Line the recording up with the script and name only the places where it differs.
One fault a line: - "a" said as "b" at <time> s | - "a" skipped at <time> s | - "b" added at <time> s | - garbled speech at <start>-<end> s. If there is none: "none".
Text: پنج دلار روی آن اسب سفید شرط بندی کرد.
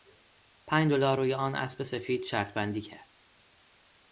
none